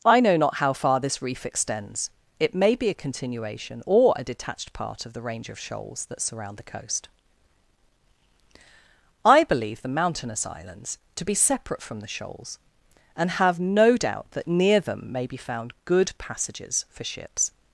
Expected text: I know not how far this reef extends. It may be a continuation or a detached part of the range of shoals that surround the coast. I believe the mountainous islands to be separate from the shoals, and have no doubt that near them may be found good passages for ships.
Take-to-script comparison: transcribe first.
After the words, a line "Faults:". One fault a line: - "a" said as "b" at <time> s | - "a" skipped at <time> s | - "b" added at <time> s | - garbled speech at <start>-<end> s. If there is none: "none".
I know not how far this reef extends. It may be a continuation or a detached part of the range of shoals that surround the coast. I believe the mountainous islands to be separate from the shoals, and have no doubt that near them may be found good passages for ships.
Faults:
none